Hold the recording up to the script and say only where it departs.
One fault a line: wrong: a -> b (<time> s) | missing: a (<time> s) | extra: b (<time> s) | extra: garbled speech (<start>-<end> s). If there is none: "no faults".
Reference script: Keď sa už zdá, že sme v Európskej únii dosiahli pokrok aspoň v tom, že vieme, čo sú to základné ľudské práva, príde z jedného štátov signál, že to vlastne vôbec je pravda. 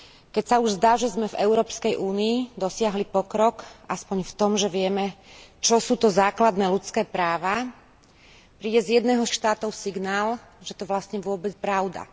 no faults